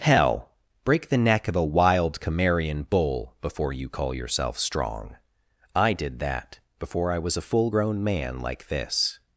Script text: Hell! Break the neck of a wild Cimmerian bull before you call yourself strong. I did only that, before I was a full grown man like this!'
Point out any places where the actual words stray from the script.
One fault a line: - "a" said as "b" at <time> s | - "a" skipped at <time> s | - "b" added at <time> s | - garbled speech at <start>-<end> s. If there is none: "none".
- "only" skipped at 6.2 s